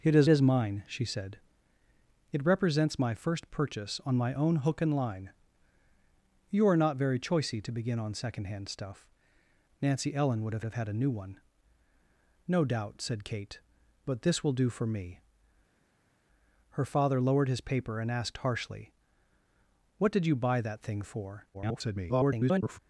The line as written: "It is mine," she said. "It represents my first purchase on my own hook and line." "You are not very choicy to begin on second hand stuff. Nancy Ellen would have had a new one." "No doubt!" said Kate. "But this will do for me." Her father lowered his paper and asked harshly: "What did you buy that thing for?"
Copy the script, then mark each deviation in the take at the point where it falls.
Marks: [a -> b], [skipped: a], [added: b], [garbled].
"It is [added: is] mine," she said. "It represents my first purchase on my own hook and line." "You are not very choicy to begin on second hand stuff. Nancy Ellen would have [added: have] had a new one." "No doubt!" said Kate. "But this will do for me." Her father lowered his paper and asked harshly: "What did you buy that thing for?" [garbled]